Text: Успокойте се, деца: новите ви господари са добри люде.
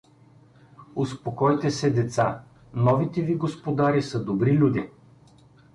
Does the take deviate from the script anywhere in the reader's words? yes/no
no